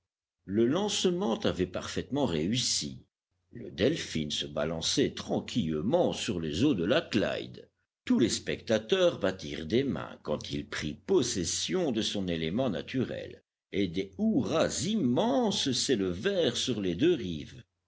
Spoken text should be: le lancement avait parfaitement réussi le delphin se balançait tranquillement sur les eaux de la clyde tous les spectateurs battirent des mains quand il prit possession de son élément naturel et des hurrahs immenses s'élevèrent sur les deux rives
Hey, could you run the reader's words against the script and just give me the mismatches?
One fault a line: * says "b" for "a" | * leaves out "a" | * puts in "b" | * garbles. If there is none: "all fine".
all fine